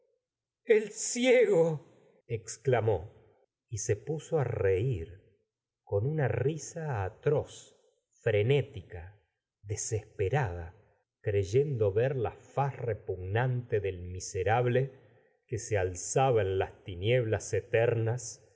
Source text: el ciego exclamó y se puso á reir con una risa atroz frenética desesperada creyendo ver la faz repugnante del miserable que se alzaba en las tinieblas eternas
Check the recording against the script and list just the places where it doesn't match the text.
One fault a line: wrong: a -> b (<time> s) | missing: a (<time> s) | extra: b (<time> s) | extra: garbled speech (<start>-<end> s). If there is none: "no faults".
no faults